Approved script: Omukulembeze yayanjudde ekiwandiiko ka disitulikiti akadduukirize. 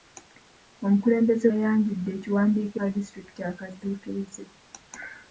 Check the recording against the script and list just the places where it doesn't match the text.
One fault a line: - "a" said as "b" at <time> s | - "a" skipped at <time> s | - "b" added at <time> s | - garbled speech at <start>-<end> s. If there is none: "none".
none